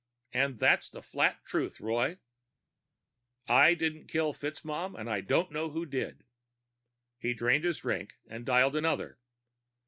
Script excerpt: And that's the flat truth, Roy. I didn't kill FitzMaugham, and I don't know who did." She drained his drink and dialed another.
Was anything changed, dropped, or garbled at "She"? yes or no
yes